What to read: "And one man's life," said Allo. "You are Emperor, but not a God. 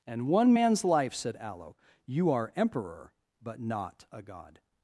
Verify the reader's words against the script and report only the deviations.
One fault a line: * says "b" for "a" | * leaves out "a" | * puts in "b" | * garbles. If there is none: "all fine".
all fine